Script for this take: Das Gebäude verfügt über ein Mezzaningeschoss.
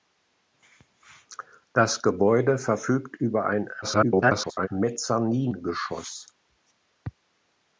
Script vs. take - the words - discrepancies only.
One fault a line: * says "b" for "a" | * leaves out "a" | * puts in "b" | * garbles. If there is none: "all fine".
* garbles